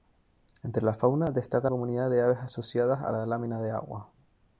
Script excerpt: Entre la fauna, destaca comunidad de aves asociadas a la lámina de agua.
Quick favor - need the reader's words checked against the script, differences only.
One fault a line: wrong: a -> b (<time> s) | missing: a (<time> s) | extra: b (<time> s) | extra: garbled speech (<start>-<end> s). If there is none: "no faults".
no faults